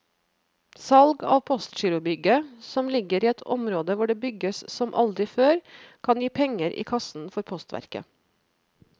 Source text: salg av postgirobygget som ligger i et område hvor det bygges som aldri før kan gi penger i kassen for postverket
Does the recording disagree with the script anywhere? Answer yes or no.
no